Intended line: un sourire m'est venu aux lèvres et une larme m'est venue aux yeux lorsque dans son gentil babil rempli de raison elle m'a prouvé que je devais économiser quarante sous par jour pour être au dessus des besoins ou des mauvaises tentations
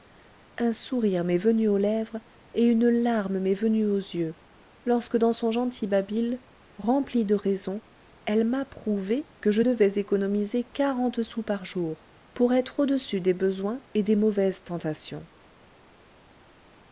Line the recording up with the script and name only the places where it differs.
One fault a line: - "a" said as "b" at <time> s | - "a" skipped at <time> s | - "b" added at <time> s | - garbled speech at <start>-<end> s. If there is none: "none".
- "ou" said as "et" at 13.9 s